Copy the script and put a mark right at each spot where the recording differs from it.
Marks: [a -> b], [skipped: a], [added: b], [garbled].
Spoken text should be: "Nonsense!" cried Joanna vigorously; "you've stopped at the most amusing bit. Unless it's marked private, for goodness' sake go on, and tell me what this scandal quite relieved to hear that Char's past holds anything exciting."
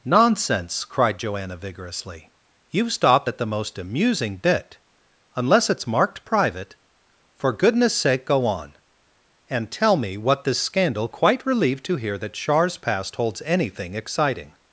"Nonsense!" cried Joanna vigorously; "you've stopped at the most amusing bit. Unless it's marked private, for goodness' sake go on, and tell me what this scandal quite relieved to hear that Char's past holds anything exciting."